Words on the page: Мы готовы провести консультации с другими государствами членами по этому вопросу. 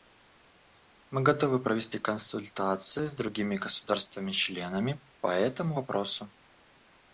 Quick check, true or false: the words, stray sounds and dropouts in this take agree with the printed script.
true